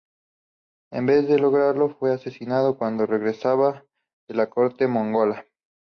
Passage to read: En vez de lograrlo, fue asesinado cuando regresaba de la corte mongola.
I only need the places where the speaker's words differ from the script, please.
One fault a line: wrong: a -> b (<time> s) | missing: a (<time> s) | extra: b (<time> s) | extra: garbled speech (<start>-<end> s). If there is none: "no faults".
no faults